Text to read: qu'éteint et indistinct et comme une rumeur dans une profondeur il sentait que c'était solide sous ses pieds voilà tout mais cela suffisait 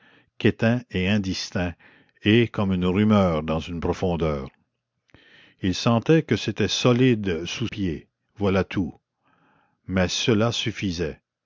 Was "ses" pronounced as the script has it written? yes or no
no